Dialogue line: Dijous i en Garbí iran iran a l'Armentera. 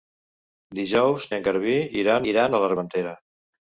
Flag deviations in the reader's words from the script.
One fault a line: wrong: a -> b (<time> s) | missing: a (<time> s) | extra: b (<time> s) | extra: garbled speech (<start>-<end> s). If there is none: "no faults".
no faults